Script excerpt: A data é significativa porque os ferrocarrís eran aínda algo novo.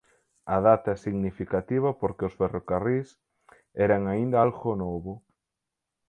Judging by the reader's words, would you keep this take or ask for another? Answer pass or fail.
pass